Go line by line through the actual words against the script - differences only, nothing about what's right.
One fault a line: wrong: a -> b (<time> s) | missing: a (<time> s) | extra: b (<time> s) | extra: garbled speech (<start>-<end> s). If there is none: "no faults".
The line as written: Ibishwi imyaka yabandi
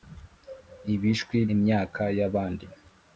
no faults